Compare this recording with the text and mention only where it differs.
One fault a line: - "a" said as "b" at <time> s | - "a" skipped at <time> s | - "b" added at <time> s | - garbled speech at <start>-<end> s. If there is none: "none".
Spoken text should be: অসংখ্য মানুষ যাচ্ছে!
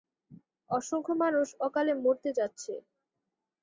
- "অকালে মরতে" added at 1.7 s